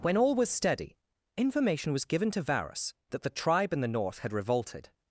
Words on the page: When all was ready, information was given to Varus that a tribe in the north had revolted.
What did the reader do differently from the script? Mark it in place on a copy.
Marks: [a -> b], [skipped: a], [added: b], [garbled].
When all was [ready, -> steady] information was given to Varus that [a -> the] tribe in the north had revolted.